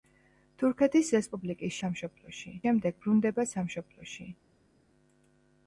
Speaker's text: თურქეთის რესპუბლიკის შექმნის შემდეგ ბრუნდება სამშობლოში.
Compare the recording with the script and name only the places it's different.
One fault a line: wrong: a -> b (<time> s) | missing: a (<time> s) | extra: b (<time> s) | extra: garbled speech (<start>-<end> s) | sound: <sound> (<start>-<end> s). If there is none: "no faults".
wrong: შექმნის -> სამშობლოში (1.8 s)